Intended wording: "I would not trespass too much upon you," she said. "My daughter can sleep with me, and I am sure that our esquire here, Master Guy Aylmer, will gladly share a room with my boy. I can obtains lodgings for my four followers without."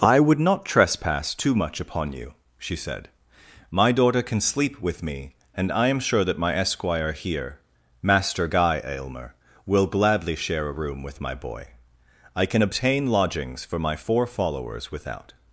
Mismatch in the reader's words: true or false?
true